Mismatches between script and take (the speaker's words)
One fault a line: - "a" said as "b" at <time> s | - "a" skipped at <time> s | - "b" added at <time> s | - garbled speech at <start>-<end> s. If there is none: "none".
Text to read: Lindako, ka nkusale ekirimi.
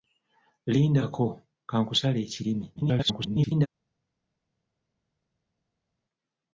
- garbled speech at 2.8-3.7 s